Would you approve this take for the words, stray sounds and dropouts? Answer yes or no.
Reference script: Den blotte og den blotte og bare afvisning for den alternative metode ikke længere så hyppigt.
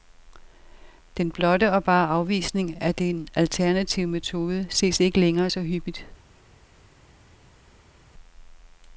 no